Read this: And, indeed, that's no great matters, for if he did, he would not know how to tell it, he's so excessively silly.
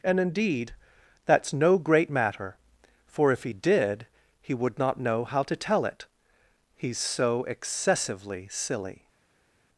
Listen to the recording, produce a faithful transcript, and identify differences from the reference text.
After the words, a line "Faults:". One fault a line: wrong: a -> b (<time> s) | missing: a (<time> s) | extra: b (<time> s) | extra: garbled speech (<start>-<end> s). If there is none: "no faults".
And, indeed, that's no great matter, for if he did, he would not know how to tell it, he's so excessively silly.
Faults:
wrong: matters -> matter (2.1 s)